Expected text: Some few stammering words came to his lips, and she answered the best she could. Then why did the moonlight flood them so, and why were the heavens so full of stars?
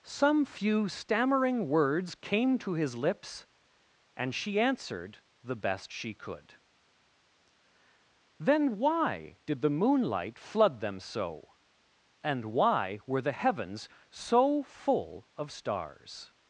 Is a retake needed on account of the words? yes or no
no